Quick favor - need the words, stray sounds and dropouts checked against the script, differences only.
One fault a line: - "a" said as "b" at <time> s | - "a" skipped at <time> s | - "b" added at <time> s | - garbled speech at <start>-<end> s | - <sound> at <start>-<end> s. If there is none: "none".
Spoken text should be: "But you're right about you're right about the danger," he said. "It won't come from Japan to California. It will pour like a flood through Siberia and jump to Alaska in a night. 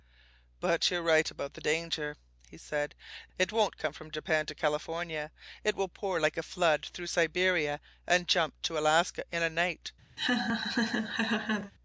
- "you're right about" skipped at 1.5 s
- laugh at 10.2-11.7 s